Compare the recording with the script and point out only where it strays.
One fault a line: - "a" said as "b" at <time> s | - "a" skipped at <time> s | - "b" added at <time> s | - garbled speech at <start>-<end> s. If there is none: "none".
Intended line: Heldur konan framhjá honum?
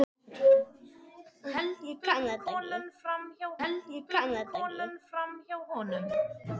- "heldur konan framhjá" added at 3.6 s